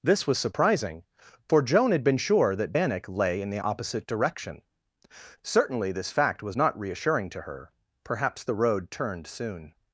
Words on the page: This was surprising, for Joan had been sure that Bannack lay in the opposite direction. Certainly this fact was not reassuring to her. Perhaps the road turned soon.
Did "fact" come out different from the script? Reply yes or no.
no